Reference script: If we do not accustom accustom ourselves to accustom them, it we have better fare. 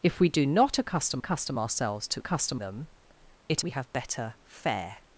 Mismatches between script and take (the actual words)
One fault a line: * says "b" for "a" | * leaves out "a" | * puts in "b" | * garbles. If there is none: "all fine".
all fine